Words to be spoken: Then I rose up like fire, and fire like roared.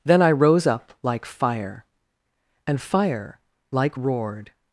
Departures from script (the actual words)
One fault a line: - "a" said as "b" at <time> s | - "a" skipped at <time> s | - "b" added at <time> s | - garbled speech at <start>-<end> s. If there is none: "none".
none